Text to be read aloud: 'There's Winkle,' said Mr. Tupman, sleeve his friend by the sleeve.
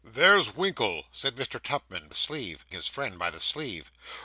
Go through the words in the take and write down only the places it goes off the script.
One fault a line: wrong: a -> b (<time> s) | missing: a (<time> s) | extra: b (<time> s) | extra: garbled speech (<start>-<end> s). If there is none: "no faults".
no faults